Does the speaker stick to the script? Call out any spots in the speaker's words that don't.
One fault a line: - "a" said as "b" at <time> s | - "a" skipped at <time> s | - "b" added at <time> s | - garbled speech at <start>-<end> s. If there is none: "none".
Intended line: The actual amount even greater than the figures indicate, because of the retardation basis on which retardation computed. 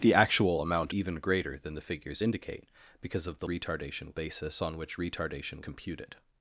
none